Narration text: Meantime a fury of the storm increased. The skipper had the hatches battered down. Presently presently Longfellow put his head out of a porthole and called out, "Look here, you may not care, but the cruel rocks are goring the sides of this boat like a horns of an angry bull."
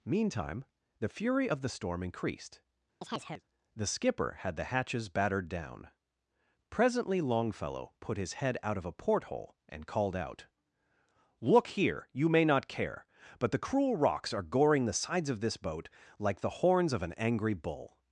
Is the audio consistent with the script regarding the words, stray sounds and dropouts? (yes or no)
no